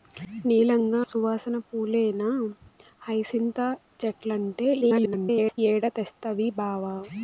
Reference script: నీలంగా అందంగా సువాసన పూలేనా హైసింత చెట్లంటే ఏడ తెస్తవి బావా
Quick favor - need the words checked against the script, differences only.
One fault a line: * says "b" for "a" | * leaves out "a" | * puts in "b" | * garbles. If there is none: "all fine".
* leaves out "అందంగా"
* garbles